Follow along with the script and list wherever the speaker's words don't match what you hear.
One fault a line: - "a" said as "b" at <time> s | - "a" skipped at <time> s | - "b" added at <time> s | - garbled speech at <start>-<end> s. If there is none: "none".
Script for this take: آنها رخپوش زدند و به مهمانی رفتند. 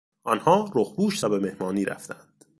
- "زدند" skipped at 1.2 s